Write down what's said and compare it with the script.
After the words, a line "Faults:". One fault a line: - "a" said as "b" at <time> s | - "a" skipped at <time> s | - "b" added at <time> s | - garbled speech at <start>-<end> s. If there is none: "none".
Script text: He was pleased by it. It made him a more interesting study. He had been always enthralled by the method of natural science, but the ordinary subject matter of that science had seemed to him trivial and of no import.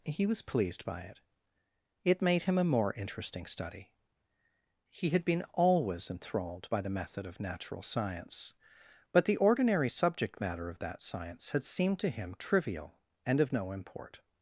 He was pleased by it. It made him a more interesting study. He had been always enthralled by the method of natural science, but the ordinary subject matter of that science had seemed to him trivial and of no import.
Faults:
none